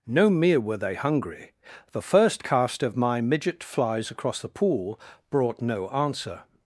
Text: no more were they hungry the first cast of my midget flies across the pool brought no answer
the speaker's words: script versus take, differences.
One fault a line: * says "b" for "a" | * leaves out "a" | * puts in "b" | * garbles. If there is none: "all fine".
* says "mere" for "more"